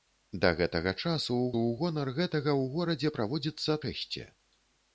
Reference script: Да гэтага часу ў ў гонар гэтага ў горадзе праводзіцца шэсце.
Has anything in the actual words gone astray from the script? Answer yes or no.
no